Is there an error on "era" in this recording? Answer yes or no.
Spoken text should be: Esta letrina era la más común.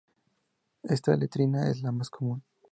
yes